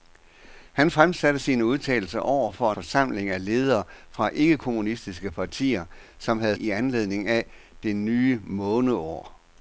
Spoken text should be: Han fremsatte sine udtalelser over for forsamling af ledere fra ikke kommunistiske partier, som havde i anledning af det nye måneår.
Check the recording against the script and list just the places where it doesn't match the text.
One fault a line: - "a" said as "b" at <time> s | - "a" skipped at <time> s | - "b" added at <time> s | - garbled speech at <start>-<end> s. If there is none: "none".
none